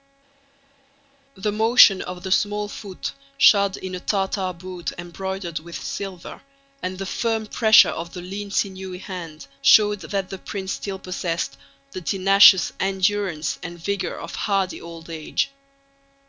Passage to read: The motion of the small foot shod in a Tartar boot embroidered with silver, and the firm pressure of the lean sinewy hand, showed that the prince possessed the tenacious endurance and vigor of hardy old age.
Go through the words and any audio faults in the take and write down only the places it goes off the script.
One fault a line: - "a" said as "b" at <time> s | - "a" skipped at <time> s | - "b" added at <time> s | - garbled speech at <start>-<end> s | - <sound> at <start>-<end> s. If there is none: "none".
- "still" added at 10.7 s